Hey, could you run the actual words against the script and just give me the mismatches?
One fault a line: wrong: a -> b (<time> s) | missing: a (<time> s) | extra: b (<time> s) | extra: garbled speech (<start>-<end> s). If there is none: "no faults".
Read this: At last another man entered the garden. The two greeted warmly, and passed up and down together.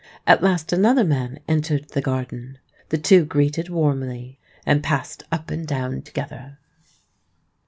no faults